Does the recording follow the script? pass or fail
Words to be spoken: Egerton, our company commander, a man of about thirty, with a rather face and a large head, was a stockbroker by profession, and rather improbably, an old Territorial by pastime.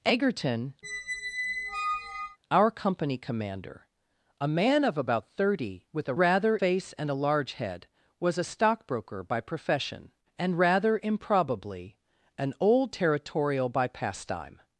pass